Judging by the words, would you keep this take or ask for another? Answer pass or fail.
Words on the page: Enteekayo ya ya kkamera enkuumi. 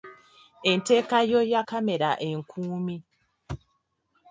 fail